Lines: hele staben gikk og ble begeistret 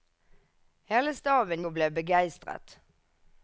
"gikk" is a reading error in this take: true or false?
true